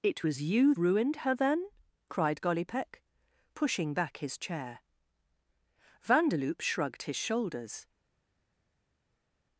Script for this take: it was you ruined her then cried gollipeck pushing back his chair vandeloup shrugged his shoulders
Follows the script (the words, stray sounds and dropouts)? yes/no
yes